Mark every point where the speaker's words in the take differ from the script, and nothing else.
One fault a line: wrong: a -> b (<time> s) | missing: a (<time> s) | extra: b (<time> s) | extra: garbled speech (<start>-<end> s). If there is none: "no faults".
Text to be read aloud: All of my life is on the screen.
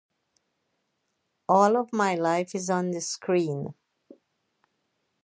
no faults